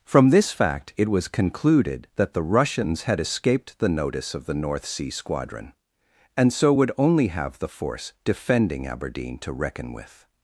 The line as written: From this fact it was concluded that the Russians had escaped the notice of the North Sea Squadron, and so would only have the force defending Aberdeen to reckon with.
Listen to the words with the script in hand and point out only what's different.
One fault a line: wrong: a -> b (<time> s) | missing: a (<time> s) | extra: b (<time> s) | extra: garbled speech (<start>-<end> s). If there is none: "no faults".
no faults